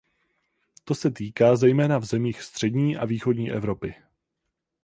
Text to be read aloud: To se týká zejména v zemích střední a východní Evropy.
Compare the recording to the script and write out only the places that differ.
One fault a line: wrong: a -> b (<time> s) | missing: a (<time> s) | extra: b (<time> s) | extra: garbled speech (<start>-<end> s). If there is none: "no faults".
no faults